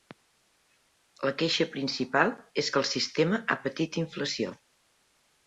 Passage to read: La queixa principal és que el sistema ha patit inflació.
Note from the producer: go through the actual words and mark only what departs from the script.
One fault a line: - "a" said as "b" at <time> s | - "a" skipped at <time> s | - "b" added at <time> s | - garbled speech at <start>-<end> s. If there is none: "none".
none